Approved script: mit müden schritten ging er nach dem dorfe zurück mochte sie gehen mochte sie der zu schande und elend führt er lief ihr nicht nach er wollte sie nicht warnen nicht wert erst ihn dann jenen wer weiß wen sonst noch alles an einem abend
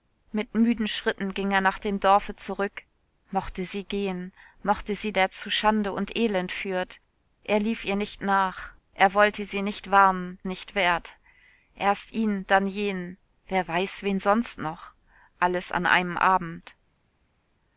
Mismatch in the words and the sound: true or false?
false